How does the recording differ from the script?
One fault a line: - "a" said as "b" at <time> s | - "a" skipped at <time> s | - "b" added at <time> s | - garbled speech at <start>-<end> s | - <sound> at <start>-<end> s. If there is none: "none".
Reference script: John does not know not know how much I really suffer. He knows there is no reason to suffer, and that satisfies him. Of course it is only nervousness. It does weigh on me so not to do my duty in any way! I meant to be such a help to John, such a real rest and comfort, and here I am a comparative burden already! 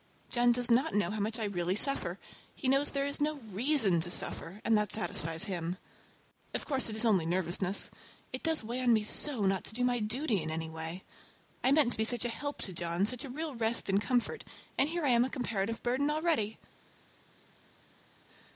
- "not know" skipped at 1.1 s